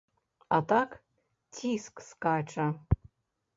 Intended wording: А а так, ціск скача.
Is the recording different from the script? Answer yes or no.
yes